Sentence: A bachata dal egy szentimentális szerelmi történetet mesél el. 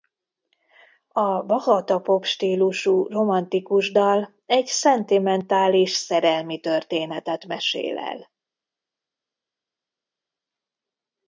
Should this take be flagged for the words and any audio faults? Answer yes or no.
yes